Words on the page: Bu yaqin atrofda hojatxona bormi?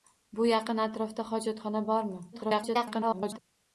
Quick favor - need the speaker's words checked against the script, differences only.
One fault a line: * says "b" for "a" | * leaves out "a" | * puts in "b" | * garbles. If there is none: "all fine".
* garbles